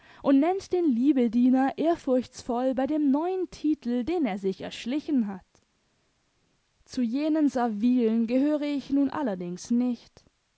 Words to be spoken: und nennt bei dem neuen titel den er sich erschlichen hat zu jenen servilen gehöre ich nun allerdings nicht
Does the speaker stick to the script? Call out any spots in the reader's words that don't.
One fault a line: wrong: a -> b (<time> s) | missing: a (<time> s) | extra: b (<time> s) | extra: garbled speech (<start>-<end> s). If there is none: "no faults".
extra: den liebediener ehrfurchtsvoll (0.7 s)